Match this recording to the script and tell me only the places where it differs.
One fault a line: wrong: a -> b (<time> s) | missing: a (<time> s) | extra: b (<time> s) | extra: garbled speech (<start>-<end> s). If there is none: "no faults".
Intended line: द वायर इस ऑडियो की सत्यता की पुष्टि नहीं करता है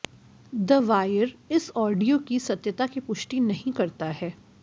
no faults